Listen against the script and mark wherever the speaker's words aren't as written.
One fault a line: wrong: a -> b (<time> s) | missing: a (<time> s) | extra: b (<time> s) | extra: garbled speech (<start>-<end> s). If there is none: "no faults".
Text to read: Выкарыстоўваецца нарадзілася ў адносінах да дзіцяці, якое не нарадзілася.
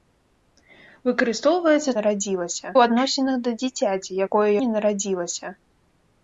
no faults